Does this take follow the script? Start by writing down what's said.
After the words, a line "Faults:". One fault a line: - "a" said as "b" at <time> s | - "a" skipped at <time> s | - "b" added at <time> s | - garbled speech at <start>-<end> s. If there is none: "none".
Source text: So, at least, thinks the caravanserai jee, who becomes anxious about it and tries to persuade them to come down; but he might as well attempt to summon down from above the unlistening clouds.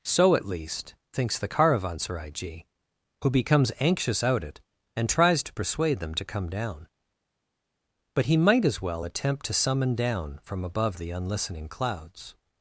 So, at least, thinks the caravanserai jee, who becomes anxious out it and tries to persuade them to come down; but he might as well attempt to summon down from above the unlistening clouds.
Faults:
- "about" said as "out" at 4.2 s